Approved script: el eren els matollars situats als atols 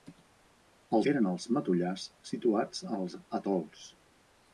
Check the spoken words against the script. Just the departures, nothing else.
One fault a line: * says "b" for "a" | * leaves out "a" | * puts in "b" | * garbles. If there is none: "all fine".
all fine